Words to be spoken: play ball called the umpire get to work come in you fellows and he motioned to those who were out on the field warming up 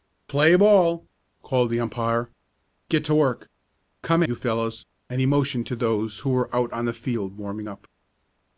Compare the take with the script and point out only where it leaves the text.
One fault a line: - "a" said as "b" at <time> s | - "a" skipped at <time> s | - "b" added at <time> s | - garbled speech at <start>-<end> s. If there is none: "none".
- "in" skipped at 4.2 s